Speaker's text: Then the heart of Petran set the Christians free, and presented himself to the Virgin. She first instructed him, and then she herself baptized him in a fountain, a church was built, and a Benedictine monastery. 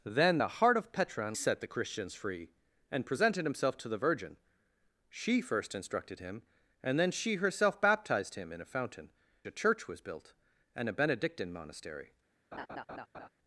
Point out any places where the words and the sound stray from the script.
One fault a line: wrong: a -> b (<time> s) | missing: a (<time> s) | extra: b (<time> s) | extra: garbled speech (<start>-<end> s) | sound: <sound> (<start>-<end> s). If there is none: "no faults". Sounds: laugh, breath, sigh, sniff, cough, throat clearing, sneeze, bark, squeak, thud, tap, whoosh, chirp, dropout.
sound: laugh (12.5-13.3 s)